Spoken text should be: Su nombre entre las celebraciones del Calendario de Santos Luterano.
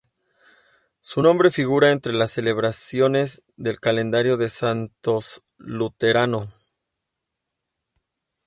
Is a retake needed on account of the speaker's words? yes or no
yes